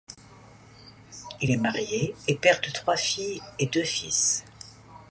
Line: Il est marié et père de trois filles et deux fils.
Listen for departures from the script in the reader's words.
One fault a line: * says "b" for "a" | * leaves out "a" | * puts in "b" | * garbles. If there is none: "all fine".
all fine